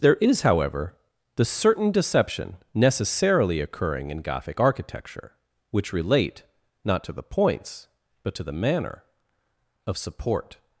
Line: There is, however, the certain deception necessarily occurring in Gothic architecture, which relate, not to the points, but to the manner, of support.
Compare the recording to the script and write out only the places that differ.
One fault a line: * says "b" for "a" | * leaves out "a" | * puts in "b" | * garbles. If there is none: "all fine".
all fine